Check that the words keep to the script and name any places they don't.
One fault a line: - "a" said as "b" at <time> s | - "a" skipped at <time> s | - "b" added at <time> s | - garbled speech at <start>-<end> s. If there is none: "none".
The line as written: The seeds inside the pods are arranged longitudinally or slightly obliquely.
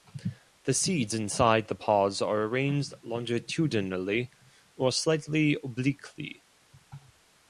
none